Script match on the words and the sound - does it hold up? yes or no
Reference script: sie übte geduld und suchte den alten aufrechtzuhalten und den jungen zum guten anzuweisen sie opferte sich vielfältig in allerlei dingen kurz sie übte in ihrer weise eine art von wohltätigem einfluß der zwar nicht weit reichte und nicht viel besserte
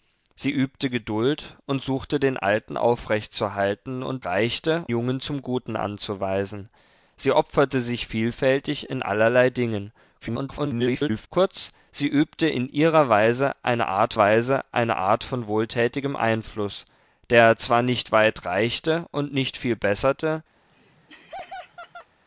no